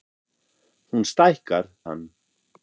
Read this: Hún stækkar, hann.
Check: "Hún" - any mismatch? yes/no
no